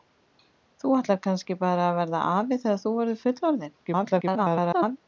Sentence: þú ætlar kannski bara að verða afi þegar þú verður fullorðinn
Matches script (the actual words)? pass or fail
fail